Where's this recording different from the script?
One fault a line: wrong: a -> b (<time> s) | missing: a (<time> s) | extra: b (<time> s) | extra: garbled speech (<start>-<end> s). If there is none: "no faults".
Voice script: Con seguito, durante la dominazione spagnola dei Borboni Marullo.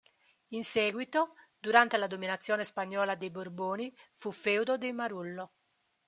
wrong: Con -> In (0.5 s)
extra: fu feudo dei (4.1 s)